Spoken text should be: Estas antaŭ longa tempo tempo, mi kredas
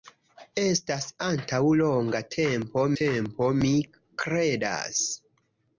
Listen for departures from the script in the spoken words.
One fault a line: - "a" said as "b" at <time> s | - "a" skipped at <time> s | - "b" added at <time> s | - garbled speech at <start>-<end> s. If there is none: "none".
none